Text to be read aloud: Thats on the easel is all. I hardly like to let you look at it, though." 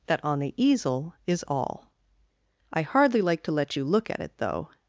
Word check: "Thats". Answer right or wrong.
wrong